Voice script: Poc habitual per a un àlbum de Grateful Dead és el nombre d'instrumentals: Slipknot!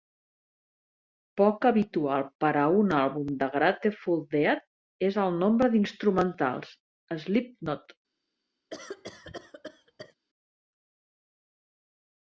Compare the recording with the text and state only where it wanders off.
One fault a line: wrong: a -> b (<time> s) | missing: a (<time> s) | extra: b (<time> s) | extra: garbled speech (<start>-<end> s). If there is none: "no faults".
no faults